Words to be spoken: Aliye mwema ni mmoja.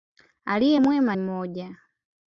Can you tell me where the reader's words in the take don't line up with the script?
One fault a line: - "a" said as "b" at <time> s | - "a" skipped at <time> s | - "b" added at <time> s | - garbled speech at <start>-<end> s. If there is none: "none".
- "ni" skipped at 1.2 s